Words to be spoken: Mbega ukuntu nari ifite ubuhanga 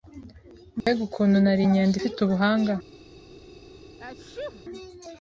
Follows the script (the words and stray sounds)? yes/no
no